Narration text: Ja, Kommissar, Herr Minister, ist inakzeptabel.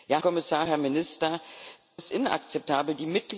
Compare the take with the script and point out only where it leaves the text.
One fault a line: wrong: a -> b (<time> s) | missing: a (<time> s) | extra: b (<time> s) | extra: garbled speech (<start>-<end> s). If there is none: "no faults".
no faults